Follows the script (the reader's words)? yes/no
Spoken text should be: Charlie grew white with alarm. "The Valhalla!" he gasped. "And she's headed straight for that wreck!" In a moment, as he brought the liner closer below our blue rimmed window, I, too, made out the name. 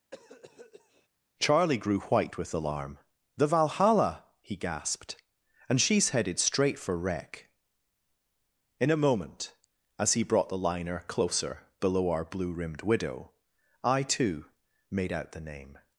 no